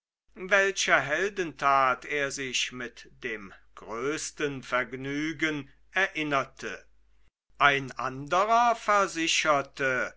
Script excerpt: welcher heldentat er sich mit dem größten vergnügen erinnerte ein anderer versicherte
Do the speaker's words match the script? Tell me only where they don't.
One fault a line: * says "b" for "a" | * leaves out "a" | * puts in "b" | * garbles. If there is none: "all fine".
all fine